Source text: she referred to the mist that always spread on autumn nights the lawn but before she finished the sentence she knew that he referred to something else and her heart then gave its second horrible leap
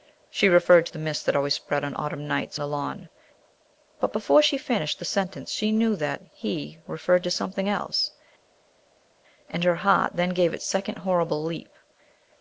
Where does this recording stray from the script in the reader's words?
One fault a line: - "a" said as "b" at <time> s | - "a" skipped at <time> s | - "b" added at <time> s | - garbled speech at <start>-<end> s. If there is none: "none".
none